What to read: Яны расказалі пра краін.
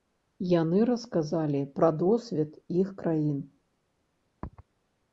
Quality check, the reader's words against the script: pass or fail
fail